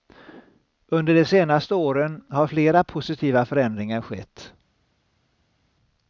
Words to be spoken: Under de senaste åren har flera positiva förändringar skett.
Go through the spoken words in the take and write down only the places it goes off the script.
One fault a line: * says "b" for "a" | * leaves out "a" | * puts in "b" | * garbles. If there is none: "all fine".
all fine